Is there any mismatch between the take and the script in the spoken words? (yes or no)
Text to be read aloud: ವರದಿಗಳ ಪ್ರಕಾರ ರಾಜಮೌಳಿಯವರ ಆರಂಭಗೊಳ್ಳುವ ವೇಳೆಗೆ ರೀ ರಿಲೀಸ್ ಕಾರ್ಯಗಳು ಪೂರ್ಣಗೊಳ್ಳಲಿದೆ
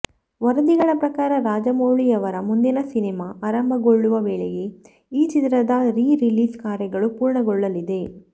yes